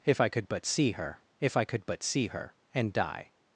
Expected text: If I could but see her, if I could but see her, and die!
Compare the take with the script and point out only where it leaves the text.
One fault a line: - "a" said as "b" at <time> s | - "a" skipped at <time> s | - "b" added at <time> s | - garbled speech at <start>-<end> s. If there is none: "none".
none